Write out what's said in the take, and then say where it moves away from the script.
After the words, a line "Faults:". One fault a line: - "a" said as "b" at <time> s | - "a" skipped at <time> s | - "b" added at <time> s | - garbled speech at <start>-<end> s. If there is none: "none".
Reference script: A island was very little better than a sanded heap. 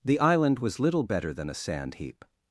The island was little better than a sand heap.
Faults:
- "A" said as "The" at 0.0 s
- "very" skipped at 0.8 s
- "sanded" said as "sand" at 1.5 s